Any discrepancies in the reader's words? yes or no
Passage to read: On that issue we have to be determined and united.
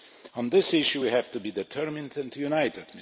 yes